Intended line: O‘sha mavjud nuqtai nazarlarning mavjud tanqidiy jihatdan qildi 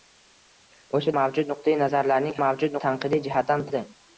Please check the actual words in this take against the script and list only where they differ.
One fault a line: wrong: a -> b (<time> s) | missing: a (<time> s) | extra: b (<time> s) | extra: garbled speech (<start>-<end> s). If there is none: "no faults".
no faults